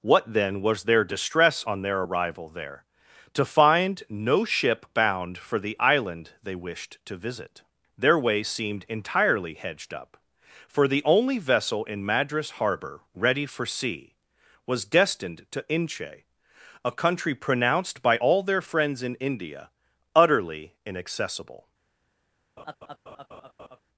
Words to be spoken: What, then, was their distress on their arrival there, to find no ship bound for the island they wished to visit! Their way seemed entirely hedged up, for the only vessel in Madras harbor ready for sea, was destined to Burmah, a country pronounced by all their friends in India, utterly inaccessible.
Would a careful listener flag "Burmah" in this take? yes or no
yes